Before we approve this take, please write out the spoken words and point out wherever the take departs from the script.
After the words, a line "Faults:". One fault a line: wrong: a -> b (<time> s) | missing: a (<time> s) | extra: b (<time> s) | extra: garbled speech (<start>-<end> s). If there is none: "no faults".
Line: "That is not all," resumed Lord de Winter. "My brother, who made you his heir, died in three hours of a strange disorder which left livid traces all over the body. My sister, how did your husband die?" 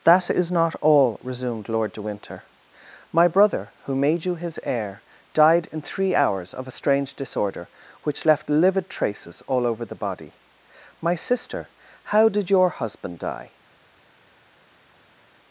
"That is not all," resumed Lord de Winter. "My brother, who made you his heir, died in three hours of a strange disorder which left livid traces all over the body. My sister, how did your husband die?"
Faults:
no faults